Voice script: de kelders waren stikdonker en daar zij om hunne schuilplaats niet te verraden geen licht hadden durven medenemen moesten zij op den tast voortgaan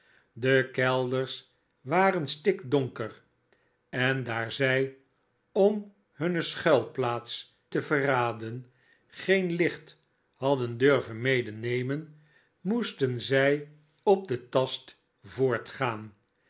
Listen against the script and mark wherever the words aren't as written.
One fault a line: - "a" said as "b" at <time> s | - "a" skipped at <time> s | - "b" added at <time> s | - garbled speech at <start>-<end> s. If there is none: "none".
- "niet" skipped at 7.5 s